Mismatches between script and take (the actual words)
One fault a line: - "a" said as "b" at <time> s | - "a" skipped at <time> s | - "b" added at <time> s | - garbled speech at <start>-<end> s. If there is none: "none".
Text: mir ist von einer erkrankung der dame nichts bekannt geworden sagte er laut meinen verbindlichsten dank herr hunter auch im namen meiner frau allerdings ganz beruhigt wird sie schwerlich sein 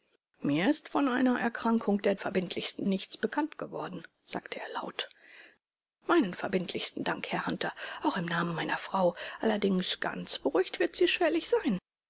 - "dame" said as "verbindlichsten" at 2.1 s